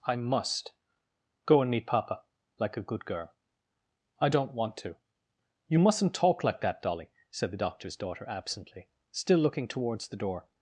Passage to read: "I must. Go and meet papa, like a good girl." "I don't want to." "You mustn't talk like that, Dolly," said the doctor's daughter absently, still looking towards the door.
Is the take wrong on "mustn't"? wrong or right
right